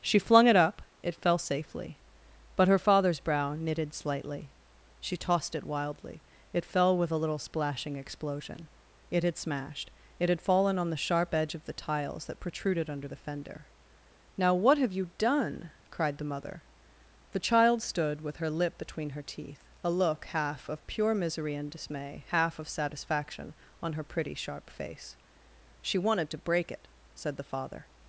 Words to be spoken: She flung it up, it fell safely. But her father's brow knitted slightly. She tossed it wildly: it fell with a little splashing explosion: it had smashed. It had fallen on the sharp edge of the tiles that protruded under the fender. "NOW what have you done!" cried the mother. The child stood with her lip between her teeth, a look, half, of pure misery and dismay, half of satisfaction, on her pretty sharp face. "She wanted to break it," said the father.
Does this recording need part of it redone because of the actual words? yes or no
no